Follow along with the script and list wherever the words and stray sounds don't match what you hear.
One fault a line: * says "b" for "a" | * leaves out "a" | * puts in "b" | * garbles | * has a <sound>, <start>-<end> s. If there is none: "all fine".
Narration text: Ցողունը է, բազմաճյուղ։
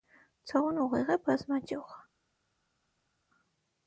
* puts in "ուղիղ"